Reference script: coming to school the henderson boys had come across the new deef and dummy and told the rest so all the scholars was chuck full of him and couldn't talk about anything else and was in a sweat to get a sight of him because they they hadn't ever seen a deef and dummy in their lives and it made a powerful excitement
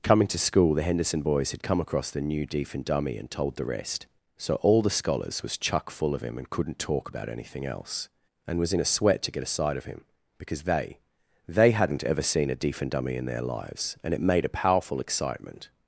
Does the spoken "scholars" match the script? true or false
true